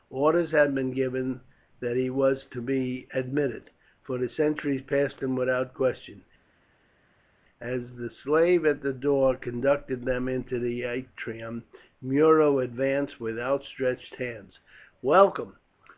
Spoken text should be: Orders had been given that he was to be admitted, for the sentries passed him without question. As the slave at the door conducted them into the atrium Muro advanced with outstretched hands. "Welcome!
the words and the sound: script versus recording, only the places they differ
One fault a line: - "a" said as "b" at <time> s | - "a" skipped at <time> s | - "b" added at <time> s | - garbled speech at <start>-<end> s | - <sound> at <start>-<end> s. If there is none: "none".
none